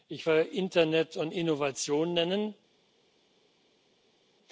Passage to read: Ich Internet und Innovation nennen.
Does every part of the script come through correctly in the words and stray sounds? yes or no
yes